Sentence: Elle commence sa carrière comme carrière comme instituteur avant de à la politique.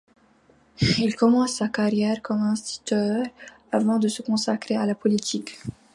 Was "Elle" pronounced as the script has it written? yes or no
no